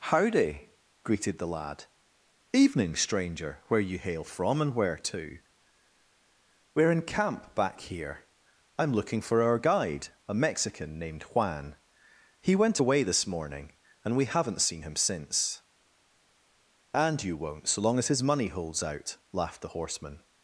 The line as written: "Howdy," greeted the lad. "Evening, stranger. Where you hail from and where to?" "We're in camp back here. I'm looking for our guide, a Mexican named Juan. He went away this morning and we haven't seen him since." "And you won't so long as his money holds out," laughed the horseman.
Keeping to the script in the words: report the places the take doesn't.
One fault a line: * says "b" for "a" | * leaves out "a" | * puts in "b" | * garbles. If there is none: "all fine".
all fine